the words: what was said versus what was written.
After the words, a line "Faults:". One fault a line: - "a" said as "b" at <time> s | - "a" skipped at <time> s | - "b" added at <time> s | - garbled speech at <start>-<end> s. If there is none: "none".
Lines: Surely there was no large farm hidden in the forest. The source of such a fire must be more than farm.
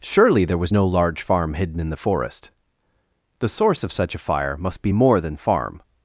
Surely there was no large farm hidden in the forest. The source of such a fire must be more than farm.
Faults:
none